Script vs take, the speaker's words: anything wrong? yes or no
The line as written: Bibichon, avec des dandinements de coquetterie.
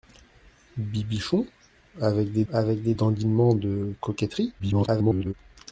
yes